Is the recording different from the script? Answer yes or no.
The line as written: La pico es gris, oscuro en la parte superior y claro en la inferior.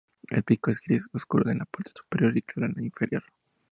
yes